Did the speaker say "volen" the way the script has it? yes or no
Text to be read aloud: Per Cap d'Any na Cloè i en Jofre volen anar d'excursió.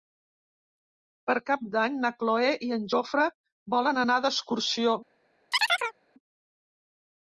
yes